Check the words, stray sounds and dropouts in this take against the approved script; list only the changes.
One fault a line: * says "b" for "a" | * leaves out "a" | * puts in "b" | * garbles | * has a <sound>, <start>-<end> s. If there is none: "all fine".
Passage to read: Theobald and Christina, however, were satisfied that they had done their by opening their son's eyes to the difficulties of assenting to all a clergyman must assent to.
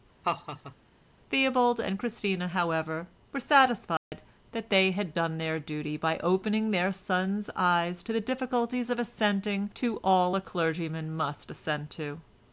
* has a laugh, 0.2-0.8 s
* has a dropout, 4.0-4.1 s
* puts in "duty"